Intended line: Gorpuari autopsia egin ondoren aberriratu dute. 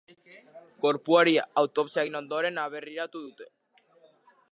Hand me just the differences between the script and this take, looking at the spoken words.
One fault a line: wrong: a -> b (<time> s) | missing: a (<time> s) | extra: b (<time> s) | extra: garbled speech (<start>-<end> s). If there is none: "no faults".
no faults